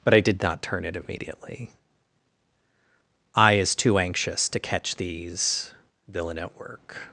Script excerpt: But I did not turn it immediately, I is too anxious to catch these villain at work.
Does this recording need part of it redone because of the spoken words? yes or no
no